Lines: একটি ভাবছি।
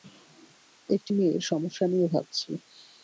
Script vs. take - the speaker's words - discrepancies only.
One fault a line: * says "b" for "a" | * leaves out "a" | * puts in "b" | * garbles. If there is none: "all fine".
* puts in "মেয়ের সমস্যা নিয়ে"